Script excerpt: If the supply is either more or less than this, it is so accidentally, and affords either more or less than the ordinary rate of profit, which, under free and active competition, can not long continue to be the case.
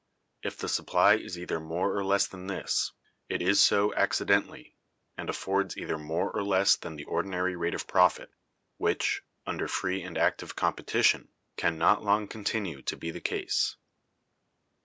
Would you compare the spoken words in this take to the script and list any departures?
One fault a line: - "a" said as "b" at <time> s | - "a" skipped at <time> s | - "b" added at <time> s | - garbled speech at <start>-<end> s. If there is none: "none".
none